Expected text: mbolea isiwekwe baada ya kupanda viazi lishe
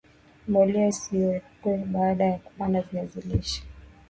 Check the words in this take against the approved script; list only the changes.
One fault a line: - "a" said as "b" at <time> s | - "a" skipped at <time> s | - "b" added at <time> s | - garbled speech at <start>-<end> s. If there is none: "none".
none